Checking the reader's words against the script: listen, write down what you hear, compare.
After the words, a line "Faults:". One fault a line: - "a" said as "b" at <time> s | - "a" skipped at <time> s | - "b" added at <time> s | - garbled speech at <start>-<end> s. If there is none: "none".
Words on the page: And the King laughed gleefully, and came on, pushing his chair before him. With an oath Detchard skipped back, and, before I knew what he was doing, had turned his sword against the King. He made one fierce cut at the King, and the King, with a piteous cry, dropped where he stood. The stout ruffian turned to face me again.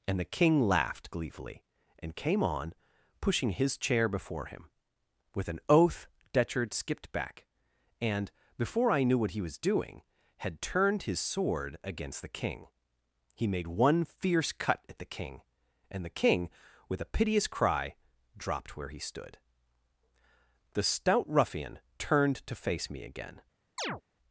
And the King laughed gleefully, and came on, pushing his chair before him. With an oath Detchard skipped back, and, before I knew what he was doing, had turned his sword against the King. He made one fierce cut at the King, and the King, with a piteous cry, dropped where he stood. The stout ruffian turned to face me again.
Faults:
none